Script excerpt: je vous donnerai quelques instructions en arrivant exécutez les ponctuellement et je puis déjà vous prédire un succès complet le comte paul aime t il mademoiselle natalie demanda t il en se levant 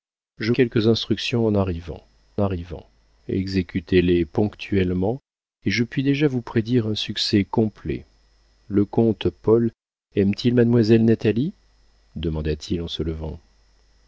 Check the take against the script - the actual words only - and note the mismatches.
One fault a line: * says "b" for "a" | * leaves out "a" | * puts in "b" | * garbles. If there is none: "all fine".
* leaves out "vous donnerai"
* puts in "arrivant"